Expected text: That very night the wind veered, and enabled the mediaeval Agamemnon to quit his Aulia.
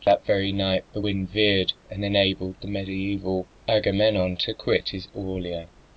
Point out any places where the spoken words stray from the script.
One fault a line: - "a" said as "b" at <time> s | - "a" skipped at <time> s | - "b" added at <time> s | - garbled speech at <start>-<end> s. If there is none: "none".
none